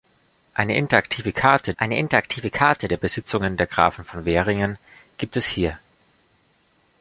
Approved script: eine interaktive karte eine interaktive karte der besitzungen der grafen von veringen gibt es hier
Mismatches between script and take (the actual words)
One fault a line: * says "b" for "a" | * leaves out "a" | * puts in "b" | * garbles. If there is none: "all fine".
all fine